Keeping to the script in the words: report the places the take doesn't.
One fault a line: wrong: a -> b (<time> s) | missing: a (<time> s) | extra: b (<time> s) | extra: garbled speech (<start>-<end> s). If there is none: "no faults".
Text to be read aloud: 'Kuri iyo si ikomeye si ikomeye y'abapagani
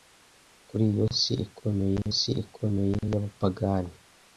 no faults